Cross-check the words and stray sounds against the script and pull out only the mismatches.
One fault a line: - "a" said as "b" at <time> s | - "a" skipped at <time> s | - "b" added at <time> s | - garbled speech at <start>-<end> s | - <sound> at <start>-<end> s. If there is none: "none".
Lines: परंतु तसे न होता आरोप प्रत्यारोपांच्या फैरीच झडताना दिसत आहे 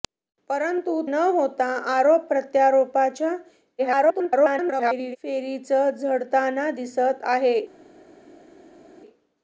- "तसे" skipped at 0.9 s
- garbled speech at 3.8-5.2 s